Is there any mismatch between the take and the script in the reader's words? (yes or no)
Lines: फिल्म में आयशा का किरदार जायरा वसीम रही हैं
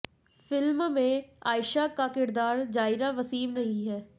no